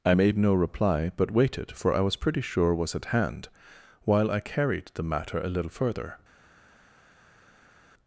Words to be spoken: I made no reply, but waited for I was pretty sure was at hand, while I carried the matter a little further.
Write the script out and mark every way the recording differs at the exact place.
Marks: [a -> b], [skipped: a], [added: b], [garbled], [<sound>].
I made no reply, but waited for I was pretty sure was at hand, while I carried the matter a little further.